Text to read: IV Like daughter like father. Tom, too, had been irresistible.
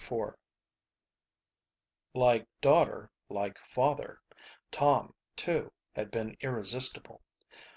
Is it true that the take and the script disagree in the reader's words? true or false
false